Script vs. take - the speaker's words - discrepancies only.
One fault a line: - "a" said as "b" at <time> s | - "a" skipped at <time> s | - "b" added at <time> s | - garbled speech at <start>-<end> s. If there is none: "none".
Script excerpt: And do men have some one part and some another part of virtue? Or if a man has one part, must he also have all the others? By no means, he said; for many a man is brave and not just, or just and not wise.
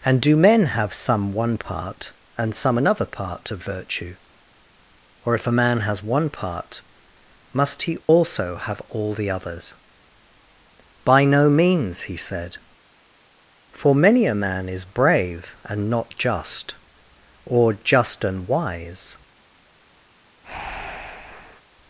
- "not" skipped at 18.5 s